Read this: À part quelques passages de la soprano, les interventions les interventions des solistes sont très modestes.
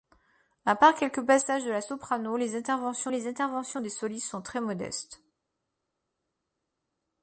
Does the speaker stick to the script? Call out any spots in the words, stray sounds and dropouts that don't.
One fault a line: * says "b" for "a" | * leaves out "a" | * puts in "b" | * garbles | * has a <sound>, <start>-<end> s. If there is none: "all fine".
all fine